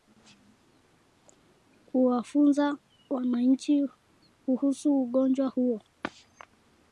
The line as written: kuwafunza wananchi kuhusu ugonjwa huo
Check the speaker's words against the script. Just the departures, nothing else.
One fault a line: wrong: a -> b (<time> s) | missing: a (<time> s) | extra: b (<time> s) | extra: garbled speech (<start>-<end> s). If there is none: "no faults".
no faults